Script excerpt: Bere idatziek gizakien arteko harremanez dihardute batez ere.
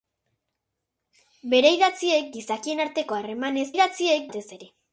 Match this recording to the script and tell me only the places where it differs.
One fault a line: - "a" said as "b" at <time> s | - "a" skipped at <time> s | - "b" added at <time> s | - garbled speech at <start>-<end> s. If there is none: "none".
- "dihardute" said as "idatziek" at 3.7 s